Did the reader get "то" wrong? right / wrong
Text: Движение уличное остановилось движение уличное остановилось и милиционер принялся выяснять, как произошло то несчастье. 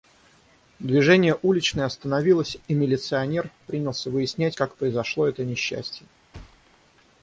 wrong